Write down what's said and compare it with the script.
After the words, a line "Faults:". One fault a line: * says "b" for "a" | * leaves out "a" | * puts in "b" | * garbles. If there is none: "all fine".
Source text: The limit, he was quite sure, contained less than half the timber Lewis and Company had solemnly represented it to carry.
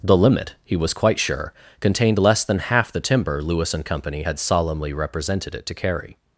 The limit, he was quite sure, contained less than half the timber Lewis and Company had solemnly represented it to carry.
Faults:
all fine